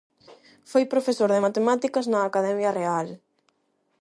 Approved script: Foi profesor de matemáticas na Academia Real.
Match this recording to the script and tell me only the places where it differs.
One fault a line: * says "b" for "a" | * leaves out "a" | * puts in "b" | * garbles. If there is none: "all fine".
all fine